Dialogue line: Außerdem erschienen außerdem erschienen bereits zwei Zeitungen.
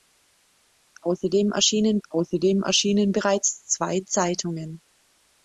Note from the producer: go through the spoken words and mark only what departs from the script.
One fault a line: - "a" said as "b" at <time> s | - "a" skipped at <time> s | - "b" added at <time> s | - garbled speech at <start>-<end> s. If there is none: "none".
none